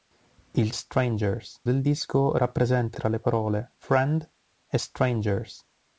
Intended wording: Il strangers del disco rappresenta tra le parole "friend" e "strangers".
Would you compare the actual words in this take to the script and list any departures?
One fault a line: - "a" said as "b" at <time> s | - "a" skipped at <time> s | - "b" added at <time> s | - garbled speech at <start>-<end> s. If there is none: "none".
none